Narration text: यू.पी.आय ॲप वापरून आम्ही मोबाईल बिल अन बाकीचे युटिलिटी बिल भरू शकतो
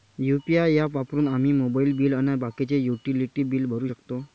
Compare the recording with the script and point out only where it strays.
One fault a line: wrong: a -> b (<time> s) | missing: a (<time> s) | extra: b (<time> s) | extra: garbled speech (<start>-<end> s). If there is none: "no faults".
no faults